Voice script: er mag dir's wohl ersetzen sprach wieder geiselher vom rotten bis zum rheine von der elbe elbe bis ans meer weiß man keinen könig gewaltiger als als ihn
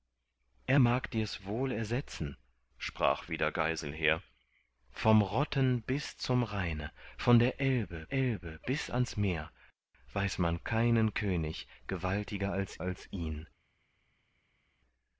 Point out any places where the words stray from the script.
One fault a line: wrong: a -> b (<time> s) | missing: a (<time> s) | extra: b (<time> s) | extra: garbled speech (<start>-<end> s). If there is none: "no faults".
no faults